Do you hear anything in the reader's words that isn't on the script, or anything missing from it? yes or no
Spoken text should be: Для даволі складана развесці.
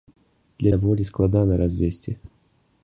no